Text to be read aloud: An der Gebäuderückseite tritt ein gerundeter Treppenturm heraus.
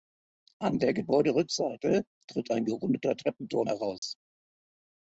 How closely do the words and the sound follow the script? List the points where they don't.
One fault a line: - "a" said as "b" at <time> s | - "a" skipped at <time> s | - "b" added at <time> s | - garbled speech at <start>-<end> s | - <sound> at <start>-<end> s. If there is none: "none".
- dropout at 4.0-4.0 s